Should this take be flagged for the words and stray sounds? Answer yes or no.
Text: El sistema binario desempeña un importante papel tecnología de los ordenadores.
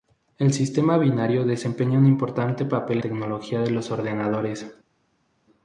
no